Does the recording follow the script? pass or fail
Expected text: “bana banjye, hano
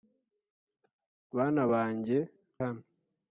pass